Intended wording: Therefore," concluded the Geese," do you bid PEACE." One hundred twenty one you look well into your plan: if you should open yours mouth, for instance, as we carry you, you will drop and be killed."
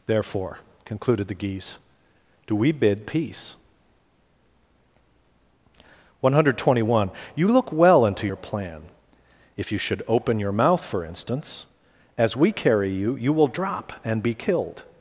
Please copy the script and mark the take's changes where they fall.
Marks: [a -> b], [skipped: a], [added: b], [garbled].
Therefore," concluded the Geese," do [you -> we] bid PEACE." One hundred twenty one you look well into your plan: if you should open [yours -> your] mouth, for instance, as we carry you, you will drop and be killed."